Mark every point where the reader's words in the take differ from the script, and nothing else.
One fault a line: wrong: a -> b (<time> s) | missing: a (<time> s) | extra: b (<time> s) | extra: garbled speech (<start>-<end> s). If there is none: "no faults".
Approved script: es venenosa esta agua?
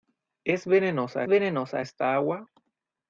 extra: venenosa (1.2 s)